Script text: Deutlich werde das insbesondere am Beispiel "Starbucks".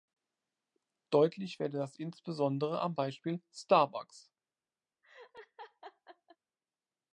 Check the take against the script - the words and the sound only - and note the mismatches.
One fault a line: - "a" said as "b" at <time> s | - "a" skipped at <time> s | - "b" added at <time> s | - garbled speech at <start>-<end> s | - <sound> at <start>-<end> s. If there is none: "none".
- laugh at 5.0-6.4 s